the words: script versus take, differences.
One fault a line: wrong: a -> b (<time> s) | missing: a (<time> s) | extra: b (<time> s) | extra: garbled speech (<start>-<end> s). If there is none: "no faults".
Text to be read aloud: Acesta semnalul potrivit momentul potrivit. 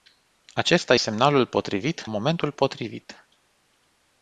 no faults